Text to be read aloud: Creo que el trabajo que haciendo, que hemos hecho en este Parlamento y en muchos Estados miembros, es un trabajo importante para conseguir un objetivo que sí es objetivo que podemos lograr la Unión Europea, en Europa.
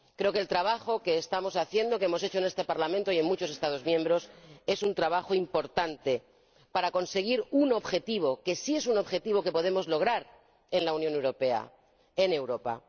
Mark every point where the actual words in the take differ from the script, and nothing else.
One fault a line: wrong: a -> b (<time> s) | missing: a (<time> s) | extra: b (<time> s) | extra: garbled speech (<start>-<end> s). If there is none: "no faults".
extra: estamos (1.2 s)
extra: un (8.9 s)
extra: en (10.7 s)